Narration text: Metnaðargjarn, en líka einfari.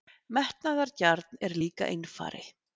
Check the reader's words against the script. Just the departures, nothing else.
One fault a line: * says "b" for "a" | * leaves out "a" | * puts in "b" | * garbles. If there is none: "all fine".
all fine